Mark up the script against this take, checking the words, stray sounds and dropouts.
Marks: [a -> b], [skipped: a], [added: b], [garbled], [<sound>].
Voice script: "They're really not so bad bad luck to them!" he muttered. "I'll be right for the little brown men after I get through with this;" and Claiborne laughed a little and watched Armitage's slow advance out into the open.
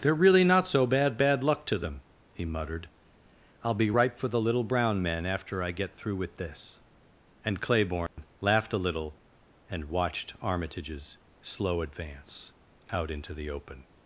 "They're really not so bad bad luck to them!" he muttered. "I'll be right for the little brown men after I get through with this;" and Claiborne [dropout] laughed a little and watched Armitage's slow advance out into the open.